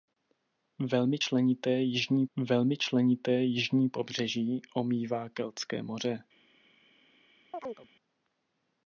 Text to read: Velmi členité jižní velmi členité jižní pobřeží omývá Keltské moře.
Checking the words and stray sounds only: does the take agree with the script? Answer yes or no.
no